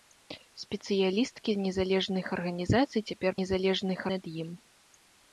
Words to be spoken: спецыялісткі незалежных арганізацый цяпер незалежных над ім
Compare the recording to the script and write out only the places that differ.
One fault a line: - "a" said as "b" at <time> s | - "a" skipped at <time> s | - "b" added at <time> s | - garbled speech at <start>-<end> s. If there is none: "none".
none